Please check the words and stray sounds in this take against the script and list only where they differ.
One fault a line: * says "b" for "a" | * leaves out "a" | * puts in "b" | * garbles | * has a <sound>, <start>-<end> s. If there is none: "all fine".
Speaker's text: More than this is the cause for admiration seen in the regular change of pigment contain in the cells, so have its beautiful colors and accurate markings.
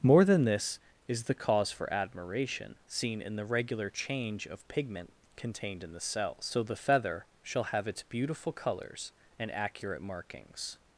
* says "contained" for "contain"
* puts in "the feather shall"